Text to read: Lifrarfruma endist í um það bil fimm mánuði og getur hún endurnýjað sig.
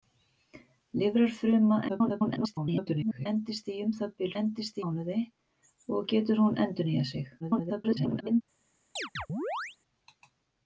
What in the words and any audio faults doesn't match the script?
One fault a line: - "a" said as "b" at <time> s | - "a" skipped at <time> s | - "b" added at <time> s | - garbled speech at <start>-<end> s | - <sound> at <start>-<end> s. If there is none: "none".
- garbled speech at 1.9-3.3 s
- "fimm" said as "endist" at 4.4 s
- garbled speech at 7.4-8.4 s
- chirp at 9.0-9.8 s